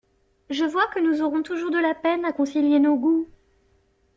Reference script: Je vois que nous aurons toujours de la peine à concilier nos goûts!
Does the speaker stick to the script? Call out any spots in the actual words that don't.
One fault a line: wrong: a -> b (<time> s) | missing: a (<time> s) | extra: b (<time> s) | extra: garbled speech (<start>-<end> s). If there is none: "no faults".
no faults